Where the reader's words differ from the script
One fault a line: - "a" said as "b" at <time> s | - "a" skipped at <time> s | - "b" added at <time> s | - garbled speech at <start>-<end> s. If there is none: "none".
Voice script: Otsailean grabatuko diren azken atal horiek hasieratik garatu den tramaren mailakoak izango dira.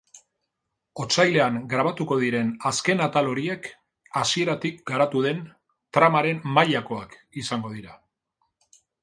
none